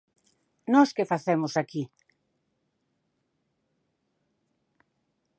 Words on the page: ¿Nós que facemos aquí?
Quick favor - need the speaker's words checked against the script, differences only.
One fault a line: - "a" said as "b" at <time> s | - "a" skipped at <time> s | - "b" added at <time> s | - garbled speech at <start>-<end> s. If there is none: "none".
none